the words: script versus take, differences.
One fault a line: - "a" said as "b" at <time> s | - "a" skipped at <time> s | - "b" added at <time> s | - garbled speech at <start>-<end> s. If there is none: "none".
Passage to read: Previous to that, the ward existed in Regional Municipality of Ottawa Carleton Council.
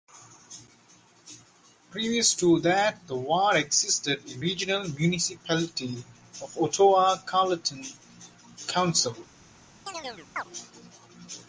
none